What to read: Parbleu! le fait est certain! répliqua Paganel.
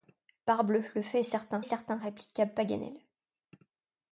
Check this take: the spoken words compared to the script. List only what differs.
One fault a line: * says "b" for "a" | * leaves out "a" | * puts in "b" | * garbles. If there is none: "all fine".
* puts in "certain"